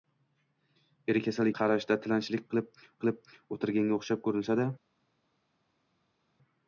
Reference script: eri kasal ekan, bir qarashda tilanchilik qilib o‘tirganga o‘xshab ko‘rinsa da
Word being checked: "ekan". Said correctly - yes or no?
no